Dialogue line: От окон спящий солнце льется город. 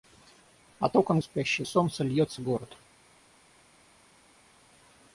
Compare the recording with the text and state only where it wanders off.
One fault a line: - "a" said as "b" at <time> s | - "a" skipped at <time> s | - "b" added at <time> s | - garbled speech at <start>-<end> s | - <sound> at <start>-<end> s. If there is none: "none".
none